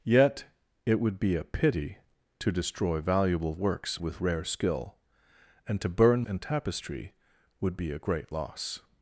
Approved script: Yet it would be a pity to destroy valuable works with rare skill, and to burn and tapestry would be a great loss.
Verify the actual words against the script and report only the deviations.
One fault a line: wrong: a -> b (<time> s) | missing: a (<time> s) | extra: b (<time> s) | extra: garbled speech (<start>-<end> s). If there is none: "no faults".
no faults